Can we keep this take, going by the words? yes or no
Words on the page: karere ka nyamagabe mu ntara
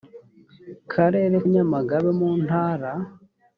no